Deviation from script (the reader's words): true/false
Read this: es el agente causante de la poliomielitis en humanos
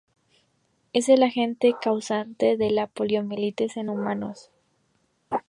false